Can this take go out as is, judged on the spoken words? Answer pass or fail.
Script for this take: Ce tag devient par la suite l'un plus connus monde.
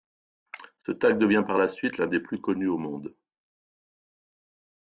fail